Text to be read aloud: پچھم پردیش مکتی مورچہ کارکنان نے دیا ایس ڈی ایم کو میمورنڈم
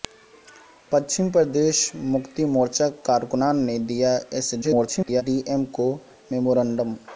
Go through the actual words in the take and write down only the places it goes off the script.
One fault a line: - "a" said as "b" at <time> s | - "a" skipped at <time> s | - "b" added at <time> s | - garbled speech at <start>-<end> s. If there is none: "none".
- garbled speech at 4.6-5.2 s